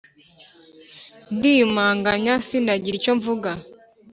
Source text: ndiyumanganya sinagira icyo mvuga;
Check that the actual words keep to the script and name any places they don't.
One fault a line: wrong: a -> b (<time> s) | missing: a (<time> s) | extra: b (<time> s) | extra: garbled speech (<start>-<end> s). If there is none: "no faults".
no faults